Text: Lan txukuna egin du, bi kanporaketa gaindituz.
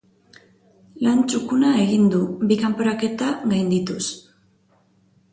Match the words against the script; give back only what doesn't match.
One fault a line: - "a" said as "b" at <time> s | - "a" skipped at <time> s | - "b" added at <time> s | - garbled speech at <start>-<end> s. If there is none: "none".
none